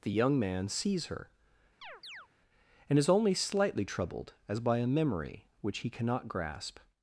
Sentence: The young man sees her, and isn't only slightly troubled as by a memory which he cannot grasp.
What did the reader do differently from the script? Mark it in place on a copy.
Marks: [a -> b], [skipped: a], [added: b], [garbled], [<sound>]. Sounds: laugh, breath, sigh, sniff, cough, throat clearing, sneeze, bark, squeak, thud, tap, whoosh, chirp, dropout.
The young man sees her, [chirp] and [isn't -> is] only slightly troubled as by a memory which he cannot grasp.